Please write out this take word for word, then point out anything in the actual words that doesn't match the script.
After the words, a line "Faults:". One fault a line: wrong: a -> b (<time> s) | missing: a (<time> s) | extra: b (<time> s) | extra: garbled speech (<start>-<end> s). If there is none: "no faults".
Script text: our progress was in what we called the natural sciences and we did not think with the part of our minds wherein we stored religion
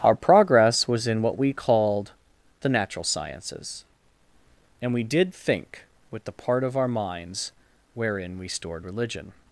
our progress was in what we called the natural sciences and we did think with the part of our minds wherein we stored religion
Faults:
missing: not (5.3 s)